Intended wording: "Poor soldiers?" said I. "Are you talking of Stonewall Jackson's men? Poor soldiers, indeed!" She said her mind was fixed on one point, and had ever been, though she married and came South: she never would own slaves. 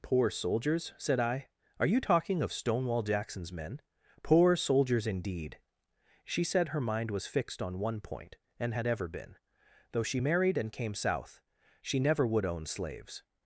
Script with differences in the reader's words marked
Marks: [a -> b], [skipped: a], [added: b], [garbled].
"Poor soldiers?" said I. "Are you talking of Stonewall Jackson's men? Poor soldiers, indeed!" She said her mind was fixed on one point, and had ever been, though she married and came South: she never would own slaves.